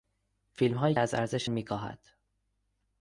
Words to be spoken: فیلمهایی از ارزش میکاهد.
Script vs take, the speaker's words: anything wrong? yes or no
no